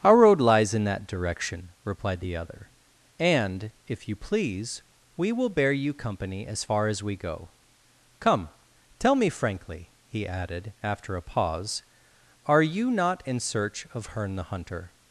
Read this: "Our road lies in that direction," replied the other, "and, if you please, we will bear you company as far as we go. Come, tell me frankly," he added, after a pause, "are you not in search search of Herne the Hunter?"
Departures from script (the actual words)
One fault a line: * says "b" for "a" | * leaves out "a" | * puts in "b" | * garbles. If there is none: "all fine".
* leaves out "search"